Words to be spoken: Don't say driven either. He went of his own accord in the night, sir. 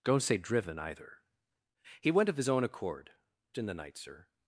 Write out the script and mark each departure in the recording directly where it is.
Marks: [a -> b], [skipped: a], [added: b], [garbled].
Don't say driven either. He went of his own accord in the night, sir.